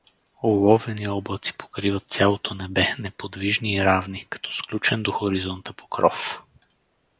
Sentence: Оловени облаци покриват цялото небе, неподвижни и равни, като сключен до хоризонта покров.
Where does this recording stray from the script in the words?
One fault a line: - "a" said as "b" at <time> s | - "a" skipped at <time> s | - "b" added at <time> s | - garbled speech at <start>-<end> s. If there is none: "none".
none